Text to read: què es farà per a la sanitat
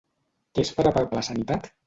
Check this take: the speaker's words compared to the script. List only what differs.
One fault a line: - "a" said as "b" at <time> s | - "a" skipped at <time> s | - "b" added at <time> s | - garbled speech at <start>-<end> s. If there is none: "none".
none